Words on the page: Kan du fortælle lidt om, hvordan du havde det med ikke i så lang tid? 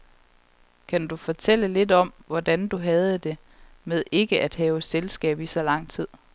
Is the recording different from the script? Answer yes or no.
yes